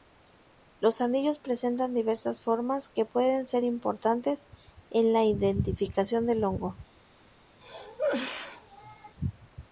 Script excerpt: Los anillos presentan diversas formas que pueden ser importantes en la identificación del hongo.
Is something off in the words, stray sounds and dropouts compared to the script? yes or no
yes